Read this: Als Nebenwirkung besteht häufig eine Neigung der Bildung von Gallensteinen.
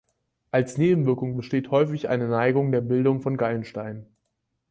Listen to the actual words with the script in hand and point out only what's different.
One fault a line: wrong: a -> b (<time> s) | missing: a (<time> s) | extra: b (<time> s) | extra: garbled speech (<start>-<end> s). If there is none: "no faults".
no faults